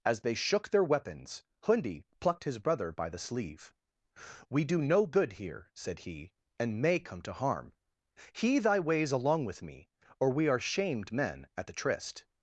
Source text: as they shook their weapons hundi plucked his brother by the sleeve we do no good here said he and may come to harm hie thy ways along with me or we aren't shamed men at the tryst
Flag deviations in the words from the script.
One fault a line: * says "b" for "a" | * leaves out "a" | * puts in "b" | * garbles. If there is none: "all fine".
* says "are" for "aren't"